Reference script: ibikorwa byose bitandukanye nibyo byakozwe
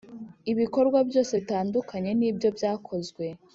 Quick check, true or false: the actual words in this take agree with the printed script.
true